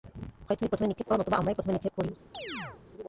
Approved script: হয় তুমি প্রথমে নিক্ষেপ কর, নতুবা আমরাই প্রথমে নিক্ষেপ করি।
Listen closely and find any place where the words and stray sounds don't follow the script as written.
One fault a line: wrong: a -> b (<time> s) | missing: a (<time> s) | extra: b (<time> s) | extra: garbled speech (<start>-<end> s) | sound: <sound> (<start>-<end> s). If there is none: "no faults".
sound: chirp (2.3-2.8 s)